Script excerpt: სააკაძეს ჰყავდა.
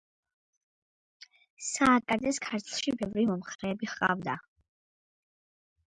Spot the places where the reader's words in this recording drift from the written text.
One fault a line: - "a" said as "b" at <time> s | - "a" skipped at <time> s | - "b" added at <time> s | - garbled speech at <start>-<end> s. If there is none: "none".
- "ქართლში ბევრი მომხრეები" added at 2.5 s